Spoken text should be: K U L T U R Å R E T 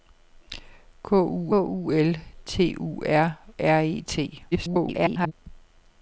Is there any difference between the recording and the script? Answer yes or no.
yes